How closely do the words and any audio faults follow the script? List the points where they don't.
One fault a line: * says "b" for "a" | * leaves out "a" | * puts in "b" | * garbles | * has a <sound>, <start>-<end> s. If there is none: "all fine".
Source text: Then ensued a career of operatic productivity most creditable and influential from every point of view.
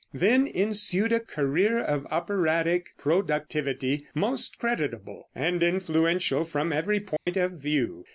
* has a dropout, 7.2-7.3 s